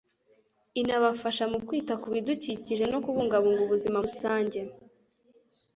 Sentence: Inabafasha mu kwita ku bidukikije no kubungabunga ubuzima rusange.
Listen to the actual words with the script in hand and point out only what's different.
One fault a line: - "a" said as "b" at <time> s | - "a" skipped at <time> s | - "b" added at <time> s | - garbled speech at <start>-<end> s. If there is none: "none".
none